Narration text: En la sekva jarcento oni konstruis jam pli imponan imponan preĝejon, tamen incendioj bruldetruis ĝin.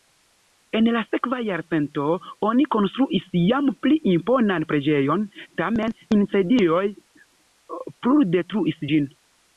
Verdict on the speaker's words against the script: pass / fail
fail